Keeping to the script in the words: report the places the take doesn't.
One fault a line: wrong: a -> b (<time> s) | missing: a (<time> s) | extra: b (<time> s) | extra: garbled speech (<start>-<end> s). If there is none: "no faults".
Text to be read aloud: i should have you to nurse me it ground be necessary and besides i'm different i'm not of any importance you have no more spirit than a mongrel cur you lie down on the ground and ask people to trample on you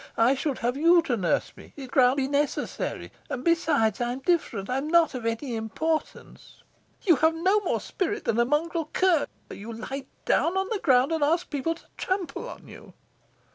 no faults